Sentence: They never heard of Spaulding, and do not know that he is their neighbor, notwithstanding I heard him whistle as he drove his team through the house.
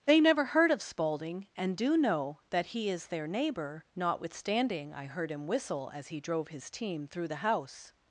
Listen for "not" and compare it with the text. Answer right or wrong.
wrong